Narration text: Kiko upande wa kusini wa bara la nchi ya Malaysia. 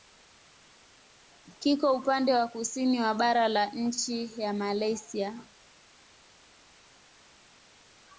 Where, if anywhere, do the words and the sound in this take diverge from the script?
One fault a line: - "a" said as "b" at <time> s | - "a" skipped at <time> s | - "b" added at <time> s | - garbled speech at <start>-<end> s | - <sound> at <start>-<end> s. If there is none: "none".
none